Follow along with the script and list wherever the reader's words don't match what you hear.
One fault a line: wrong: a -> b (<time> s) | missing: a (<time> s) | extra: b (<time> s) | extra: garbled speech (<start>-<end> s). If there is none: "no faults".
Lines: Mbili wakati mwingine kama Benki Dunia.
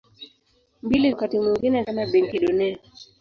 no faults